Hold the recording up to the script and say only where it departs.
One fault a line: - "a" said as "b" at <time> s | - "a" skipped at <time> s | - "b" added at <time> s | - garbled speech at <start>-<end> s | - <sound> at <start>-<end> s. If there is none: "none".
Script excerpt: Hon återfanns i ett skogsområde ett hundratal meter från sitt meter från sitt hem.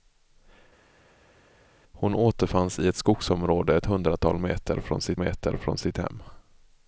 none